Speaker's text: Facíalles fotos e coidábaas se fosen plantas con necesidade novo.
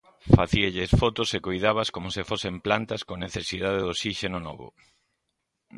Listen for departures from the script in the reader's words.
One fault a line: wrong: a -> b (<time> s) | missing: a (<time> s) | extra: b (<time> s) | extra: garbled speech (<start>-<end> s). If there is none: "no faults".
extra: como (1.9 s)
extra: de osíxeno (3.8 s)